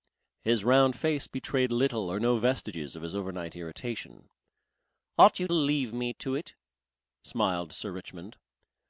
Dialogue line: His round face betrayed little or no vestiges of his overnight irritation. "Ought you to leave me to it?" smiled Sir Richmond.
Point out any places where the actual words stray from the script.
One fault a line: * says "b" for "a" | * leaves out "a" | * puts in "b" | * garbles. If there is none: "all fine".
* leaves out "to"